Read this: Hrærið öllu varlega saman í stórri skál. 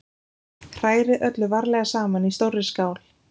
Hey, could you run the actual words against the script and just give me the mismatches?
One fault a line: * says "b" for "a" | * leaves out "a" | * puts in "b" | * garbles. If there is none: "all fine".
all fine